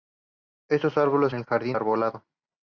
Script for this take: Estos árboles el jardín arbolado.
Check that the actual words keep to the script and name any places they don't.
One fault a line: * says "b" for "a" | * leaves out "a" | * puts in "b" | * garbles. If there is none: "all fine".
all fine